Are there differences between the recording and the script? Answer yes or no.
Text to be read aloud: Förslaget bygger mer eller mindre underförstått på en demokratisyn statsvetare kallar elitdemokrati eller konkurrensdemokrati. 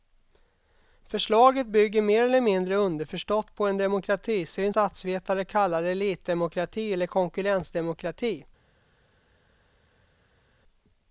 no